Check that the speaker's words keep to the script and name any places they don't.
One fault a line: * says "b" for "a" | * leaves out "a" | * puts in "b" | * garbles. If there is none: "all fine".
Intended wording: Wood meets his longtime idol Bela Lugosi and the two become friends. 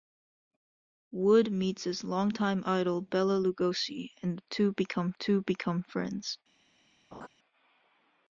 * puts in "two become"